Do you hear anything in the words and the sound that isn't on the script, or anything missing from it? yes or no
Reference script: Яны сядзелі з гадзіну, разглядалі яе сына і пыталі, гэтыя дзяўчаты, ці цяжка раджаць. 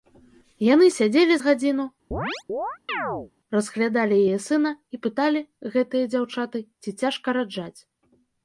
yes